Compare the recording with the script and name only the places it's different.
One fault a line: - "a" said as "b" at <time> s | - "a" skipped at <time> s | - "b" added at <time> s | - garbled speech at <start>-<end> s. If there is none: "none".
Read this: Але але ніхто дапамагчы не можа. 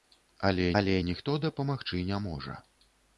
none